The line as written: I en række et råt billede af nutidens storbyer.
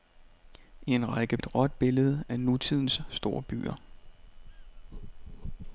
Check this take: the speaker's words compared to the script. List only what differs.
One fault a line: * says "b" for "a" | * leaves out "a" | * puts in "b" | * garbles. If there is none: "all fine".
all fine